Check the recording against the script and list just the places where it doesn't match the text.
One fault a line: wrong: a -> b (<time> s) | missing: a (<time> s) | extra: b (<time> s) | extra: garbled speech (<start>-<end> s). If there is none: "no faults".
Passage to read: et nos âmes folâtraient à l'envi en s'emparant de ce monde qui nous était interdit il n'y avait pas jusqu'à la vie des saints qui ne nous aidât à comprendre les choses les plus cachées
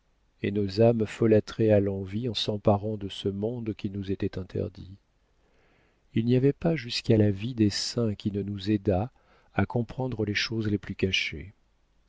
no faults